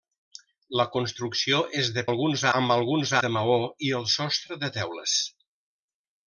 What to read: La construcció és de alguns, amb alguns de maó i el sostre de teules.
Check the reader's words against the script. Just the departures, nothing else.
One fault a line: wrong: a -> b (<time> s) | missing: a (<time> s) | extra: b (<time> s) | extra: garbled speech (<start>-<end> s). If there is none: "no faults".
no faults